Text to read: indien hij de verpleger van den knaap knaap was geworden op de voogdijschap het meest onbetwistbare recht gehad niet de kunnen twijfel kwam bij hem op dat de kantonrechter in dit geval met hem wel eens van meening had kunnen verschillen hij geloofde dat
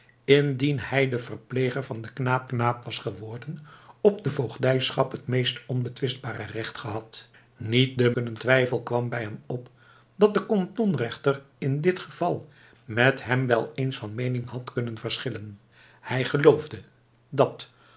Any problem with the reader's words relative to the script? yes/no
no